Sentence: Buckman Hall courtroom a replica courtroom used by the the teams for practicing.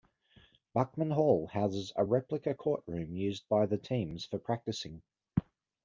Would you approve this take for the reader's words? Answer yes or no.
no